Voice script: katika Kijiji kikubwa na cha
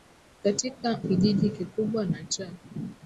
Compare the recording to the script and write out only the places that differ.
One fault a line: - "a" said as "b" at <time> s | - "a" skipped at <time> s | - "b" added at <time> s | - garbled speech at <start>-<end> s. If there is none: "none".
none